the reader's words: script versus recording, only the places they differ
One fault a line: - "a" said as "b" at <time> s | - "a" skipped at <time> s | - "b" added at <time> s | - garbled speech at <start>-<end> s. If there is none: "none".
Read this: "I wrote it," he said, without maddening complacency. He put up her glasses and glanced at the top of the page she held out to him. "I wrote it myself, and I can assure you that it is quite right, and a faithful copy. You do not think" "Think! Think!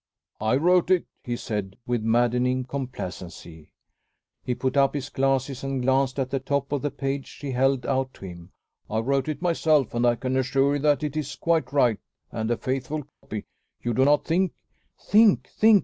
- "without" said as "with" at 1.9 s
- "her" said as "his" at 5.0 s